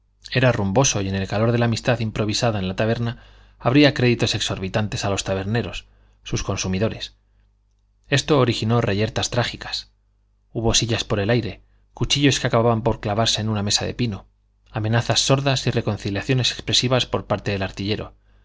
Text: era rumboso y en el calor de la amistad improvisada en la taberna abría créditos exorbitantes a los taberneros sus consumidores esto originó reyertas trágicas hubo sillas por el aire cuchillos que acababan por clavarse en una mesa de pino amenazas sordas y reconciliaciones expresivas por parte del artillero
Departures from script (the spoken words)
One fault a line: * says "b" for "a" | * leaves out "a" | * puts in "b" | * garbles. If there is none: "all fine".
all fine